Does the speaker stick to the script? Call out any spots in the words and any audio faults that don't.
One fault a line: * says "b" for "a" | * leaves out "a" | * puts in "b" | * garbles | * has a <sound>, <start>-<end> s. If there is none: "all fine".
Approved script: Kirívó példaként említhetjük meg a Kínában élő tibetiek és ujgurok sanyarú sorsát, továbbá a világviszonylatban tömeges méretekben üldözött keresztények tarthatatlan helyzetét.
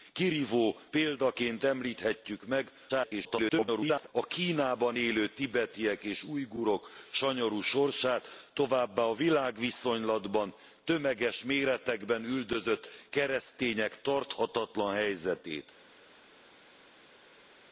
* garbles